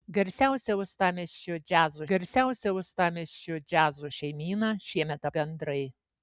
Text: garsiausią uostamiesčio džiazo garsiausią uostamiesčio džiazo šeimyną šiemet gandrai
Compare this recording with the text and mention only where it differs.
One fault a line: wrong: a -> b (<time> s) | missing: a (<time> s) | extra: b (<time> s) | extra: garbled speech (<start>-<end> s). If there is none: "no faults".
no faults